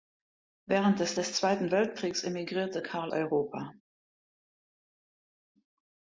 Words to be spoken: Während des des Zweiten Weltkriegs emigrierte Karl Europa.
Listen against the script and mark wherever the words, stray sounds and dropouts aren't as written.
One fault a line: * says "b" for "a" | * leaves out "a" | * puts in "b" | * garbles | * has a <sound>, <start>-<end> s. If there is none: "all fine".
all fine